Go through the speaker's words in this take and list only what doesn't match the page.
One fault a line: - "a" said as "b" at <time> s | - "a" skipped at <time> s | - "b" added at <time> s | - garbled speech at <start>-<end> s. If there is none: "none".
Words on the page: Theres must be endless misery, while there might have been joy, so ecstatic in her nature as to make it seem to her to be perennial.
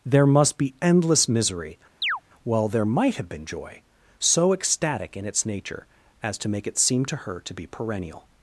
- "Theres" said as "There" at 0.1 s
- "her" said as "its" at 5.2 s